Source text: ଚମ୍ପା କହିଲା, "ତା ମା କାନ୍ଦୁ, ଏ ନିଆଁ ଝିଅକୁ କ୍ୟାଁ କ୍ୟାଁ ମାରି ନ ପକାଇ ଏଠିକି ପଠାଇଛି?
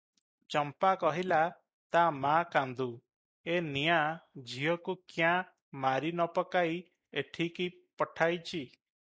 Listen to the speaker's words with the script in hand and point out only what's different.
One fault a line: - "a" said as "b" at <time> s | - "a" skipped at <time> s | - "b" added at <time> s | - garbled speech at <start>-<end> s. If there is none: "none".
- "କ୍ୟାଁ" skipped at 5.3 s